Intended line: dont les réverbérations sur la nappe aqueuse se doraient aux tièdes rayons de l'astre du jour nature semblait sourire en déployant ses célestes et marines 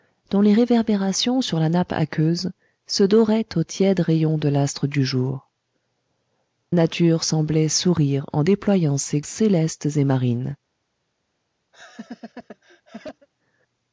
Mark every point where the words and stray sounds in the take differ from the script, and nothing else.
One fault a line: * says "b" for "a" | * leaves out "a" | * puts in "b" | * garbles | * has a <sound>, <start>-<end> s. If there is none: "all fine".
* has a laugh, 11.7-13.3 s